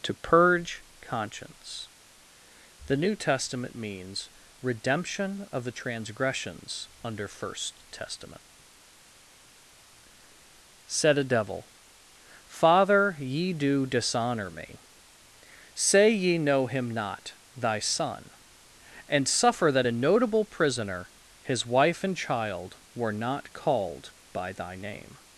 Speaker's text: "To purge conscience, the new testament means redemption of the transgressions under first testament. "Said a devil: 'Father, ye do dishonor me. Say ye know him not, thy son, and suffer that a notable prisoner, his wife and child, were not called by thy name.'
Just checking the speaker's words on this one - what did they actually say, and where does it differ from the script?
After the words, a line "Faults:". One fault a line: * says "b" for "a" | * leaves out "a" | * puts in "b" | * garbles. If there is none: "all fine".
"To purge conscience, the new testament means redemption of the transgressions under first testament. "Said a devil: 'Father, ye do dishonor me. Say ye know him not, thy son, and suffer that a notable prisoner, his wife and child, were not called by thy name.'
Faults:
all fine